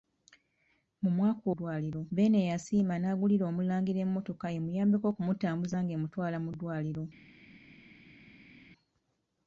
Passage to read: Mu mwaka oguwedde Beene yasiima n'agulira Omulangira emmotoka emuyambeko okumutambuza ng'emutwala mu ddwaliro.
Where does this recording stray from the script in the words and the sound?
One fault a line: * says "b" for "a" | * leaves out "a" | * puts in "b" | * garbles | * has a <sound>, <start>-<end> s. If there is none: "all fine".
* says "ddwaliro" for "oguwedde"